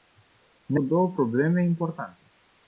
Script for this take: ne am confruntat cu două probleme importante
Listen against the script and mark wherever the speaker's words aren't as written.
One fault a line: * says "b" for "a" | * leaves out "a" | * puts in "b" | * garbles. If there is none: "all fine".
* leaves out "am confruntat"